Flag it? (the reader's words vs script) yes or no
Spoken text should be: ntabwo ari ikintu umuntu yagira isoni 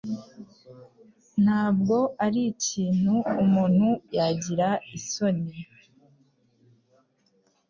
no